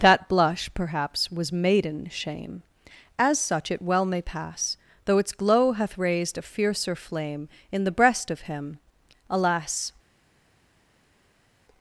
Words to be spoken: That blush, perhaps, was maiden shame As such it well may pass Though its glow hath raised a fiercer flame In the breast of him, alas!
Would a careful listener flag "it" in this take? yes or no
no